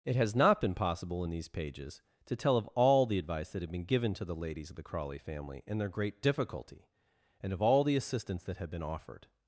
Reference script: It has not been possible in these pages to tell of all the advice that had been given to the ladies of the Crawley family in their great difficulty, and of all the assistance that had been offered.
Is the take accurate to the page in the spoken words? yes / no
yes